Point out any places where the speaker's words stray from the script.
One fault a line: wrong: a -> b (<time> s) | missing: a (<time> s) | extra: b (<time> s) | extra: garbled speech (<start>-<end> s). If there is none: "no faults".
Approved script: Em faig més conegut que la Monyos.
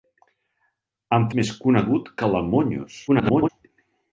missing: faig (1.3 s)
extra: garbled speech (3.1-3.5 s)